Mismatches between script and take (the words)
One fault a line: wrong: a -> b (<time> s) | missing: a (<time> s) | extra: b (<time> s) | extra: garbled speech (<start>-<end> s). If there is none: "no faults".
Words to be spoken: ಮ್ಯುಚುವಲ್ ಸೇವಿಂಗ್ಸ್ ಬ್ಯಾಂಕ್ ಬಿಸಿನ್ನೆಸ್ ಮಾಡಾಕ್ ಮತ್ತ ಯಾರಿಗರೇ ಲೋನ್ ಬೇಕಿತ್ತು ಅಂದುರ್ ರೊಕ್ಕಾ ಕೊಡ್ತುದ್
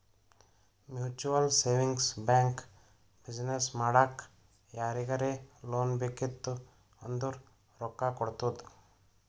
missing: ಮತ್ತ (4.2 s)